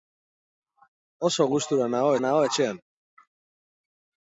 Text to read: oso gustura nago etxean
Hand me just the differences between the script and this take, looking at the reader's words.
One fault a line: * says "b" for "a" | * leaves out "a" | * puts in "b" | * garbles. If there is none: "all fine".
* puts in "nago"